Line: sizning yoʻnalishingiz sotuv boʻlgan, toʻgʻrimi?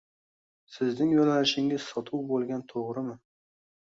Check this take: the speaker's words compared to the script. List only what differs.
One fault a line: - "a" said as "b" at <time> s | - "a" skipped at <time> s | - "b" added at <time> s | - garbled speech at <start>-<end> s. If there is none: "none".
none